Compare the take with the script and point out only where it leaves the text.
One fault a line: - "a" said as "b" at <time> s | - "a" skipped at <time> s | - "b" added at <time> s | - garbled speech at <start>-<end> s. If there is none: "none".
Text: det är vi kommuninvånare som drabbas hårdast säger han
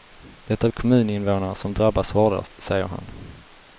- "vi" skipped at 0.7 s